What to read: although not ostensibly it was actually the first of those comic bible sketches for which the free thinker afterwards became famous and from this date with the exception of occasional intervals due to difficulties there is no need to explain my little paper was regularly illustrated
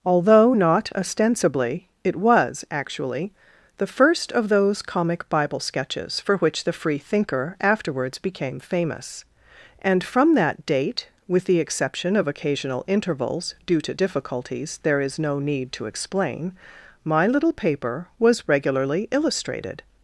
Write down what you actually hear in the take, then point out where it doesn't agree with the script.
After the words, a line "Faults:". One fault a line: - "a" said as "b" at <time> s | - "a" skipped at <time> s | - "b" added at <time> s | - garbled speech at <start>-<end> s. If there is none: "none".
although not ostensibly it was actually the first of those comic bible sketches for which the free thinker afterwards became famous and from that date with the exception of occasional intervals due to difficulties there is no need to explain my little paper was regularly illustrated
Faults:
- "this" said as "that" at 10.3 s